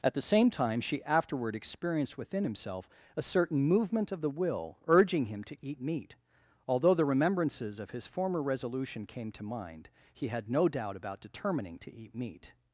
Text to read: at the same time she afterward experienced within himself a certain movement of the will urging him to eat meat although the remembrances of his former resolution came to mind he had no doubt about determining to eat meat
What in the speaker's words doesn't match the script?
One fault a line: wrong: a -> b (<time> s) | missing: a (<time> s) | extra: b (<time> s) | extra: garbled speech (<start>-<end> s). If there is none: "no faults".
no faults